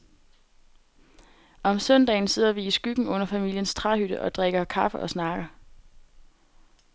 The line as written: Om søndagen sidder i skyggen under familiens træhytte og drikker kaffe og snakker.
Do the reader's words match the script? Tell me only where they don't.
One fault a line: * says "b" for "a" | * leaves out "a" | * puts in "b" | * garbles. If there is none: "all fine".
* puts in "vi"